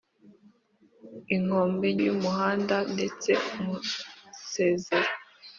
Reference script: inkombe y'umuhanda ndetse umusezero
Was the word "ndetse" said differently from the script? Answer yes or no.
no